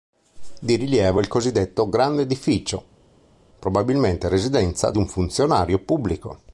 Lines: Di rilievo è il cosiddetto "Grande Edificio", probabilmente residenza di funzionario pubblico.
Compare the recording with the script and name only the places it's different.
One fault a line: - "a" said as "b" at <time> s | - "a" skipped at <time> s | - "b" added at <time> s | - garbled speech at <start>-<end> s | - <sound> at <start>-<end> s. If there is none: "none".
- "un" added at 5.0 s